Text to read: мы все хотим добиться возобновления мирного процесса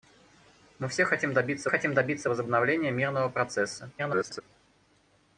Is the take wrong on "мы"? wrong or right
right